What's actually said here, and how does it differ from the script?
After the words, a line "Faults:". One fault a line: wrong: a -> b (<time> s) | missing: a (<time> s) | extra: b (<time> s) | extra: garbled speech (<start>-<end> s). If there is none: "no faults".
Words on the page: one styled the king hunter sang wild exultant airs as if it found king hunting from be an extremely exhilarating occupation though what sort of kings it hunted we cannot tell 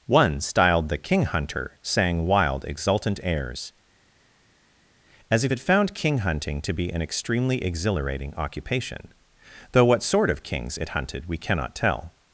one styled the king hunter sang wild exultant airs as if it found king hunting to be an extremely exhilarating occupation though what sort of kings it hunted we cannot tell
Faults:
wrong: from -> to (6.6 s)